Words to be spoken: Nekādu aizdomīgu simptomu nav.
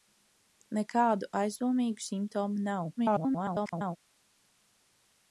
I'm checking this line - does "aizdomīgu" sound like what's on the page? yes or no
yes